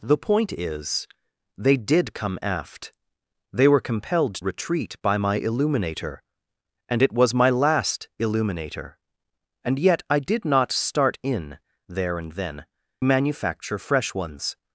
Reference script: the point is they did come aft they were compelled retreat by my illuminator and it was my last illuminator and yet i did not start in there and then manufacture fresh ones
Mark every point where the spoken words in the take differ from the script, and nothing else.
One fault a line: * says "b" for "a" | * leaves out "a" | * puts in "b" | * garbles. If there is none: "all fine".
all fine